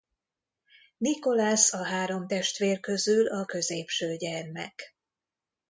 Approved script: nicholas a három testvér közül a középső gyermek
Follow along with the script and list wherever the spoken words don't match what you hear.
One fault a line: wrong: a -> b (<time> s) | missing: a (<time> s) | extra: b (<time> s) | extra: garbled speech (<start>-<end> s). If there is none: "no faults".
no faults